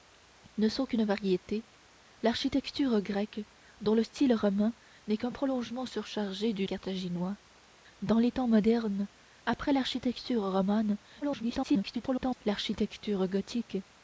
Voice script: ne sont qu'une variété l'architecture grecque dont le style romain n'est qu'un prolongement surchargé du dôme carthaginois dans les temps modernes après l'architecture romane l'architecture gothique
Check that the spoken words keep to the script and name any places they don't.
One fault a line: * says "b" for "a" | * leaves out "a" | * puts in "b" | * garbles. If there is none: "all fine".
* leaves out "dôme"
* garbles